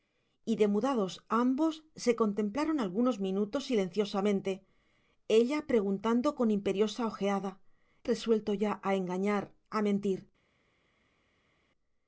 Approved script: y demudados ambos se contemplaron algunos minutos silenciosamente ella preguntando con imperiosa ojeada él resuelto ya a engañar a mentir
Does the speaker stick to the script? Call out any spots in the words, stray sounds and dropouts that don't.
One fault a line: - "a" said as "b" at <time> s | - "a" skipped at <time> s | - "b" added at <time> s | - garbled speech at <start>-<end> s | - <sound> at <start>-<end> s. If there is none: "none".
- "él" skipped at 7.6 s